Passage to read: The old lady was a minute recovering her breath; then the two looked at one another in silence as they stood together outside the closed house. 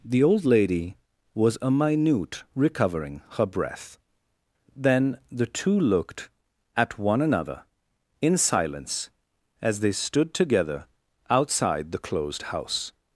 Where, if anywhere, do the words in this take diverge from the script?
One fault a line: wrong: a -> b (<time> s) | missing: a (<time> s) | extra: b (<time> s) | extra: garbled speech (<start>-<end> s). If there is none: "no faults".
no faults